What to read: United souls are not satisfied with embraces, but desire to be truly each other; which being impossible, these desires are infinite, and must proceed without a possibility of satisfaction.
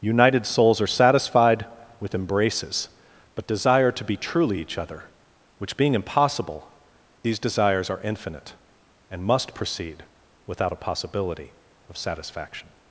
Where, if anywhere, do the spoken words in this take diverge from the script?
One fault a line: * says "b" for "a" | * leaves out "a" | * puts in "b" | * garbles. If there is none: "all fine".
* leaves out "not"